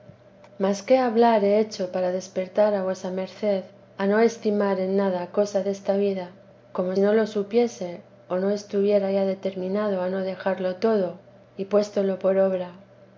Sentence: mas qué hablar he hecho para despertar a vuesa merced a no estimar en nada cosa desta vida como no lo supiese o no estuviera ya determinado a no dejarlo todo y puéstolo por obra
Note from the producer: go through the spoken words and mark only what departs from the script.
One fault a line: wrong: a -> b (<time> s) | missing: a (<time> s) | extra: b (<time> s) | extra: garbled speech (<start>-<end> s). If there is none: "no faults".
no faults